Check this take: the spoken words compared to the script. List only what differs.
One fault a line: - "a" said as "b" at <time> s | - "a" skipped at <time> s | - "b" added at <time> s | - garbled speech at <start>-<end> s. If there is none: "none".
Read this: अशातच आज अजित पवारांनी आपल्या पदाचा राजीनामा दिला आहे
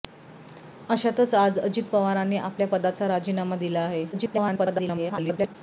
- garbled speech at 4.1-5.6 s